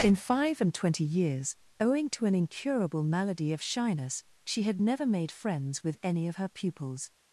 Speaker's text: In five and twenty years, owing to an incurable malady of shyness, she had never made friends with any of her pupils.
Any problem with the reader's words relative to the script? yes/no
no